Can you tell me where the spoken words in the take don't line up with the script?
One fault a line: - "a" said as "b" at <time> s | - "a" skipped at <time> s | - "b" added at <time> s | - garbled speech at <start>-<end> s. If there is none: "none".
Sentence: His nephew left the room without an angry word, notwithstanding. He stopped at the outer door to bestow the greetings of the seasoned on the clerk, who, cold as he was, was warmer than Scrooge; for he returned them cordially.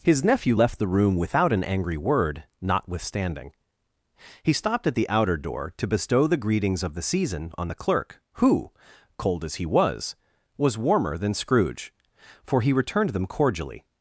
- "seasoned" said as "season" at 7.0 s